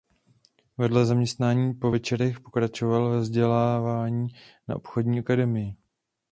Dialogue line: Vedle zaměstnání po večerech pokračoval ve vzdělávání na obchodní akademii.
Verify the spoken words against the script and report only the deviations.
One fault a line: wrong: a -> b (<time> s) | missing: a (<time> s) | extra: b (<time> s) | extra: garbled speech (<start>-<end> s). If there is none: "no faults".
no faults